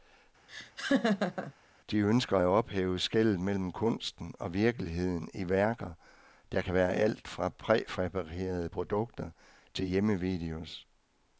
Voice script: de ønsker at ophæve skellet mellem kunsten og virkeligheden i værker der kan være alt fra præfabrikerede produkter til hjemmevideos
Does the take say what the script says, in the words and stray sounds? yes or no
no